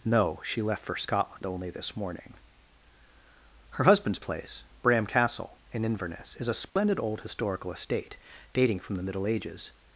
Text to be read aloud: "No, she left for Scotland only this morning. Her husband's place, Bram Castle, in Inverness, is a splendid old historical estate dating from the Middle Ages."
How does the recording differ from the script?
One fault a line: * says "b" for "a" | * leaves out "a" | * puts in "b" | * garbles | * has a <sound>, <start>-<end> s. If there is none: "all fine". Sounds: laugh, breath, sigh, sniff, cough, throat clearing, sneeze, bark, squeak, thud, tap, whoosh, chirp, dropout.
* has a dropout, 6.7-6.8 s